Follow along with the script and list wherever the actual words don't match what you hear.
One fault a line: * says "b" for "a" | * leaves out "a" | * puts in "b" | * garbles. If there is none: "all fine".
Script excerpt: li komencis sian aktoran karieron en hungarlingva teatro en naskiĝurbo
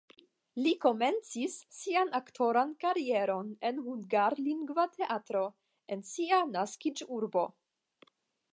* puts in "sia"